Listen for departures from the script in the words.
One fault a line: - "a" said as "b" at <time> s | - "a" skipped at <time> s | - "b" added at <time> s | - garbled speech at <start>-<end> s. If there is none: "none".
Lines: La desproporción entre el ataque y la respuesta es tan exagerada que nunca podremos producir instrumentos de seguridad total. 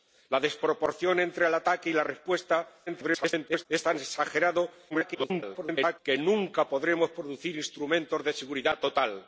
- garbled speech at 2.9-3.7 s
- garbled speech at 4.9-6.0 s